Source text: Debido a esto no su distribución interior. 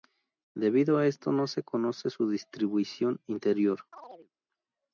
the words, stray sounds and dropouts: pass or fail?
fail